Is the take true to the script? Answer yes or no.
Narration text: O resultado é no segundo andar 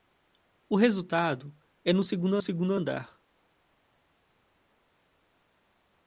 no